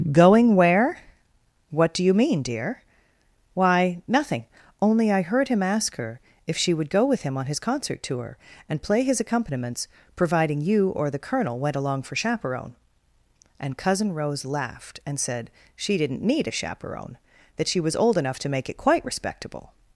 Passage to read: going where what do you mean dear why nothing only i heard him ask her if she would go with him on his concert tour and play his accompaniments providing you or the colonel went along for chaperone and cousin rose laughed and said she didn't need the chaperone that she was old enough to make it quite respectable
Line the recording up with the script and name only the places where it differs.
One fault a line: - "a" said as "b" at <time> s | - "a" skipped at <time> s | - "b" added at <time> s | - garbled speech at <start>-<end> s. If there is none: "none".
- "the" said as "a" at 16.5 s